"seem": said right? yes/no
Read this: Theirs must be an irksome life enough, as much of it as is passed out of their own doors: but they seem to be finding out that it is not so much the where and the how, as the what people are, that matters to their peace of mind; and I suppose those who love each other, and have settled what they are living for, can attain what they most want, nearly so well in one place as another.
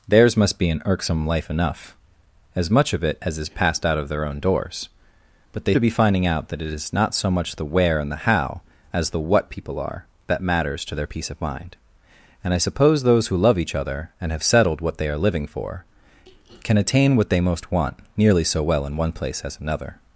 no